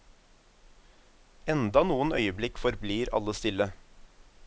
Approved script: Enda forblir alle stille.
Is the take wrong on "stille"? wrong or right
right